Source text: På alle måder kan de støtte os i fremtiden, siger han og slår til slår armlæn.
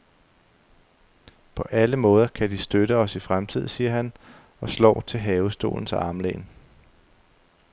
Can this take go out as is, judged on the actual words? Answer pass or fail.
fail